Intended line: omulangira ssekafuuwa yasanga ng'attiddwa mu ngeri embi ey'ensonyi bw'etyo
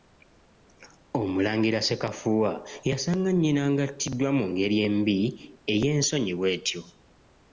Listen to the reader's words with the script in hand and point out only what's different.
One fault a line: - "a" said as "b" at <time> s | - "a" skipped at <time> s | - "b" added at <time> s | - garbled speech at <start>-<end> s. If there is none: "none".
- "nnyina" added at 3.3 s